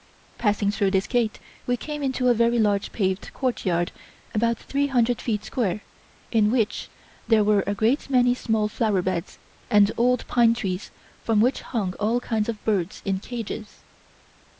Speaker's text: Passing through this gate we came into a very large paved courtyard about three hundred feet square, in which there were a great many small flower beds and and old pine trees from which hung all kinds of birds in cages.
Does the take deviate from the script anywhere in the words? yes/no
yes